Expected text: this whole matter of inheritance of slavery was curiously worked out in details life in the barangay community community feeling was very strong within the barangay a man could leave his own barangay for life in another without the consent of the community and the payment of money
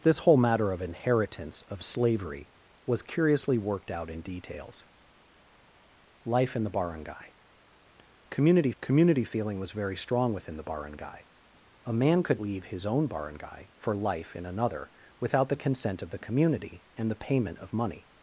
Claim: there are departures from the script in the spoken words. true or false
false